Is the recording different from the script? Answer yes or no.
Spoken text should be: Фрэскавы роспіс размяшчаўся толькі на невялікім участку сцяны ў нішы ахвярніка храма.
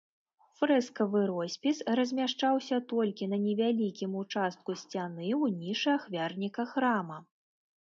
no